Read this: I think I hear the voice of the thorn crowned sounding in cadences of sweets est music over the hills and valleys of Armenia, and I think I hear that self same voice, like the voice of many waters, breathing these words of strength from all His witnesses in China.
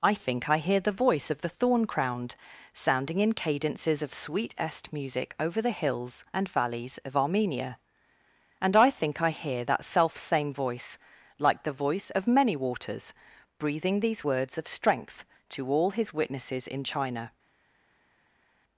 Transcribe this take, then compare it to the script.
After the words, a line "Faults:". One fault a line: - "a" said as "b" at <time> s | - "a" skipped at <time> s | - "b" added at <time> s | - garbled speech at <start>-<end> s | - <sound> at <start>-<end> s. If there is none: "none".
I think I hear the voice of the thorn crowned sounding in cadences of sweet est music over the hills and valleys of Armenia, and I think I hear that self same voice, like the voice of many waters, breathing these words of strength to all His witnesses in China.
Faults:
- "sweets" said as "sweet" at 4.2 s
- "from" said as "to" at 15.5 s